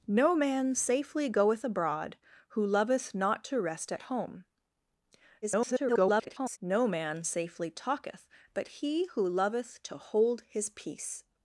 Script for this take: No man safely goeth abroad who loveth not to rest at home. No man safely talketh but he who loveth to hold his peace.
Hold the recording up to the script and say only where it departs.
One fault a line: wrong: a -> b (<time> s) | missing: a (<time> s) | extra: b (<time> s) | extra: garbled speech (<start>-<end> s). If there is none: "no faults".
extra: garbled speech (5.4-6.6 s)